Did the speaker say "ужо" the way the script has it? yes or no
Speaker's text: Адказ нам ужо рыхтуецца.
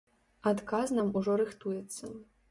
yes